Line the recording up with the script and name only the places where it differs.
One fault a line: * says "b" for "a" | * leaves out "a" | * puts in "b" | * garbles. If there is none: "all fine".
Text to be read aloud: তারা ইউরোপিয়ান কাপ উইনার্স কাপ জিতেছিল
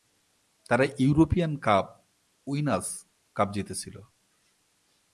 all fine